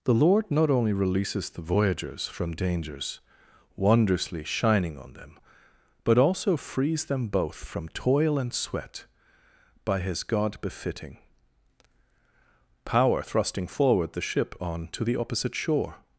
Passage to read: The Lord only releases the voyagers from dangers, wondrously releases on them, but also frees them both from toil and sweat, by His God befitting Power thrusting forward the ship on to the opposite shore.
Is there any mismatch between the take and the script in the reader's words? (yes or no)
yes